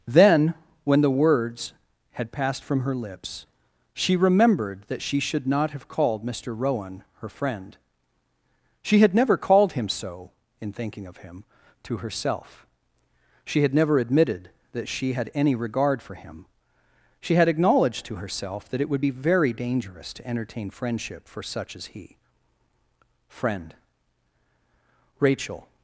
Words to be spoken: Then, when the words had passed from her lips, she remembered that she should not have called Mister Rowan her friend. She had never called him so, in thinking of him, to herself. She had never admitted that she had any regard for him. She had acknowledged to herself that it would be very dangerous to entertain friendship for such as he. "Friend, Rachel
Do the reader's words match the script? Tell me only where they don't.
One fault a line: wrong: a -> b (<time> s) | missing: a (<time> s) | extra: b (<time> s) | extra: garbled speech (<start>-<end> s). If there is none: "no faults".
no faults